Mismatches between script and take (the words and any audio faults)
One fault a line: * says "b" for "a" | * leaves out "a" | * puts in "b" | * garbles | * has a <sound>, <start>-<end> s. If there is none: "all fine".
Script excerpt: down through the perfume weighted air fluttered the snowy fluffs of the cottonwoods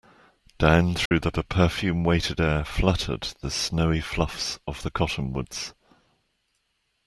* has a dropout, 1.1-1.1 s
* puts in "the"